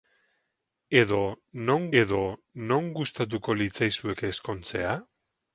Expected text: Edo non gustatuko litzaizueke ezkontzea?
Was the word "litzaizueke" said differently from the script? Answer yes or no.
no